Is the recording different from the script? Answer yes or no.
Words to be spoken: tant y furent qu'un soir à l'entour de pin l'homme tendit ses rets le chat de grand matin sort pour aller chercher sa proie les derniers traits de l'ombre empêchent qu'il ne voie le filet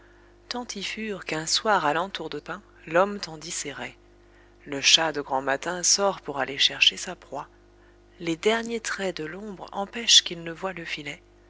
no